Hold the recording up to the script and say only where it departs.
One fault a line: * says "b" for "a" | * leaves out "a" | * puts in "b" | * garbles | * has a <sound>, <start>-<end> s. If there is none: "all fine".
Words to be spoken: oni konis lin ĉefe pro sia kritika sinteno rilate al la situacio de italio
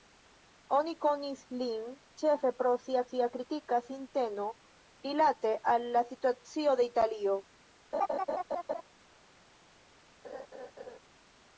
* puts in "sia"
* has a laugh, 7.9-8.8 s
* has a laugh, 10.2-11.0 s